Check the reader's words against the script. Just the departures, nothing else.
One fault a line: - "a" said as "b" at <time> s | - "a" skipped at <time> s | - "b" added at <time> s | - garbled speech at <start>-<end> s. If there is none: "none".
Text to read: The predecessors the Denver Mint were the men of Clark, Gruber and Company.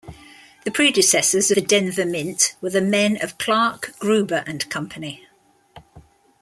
none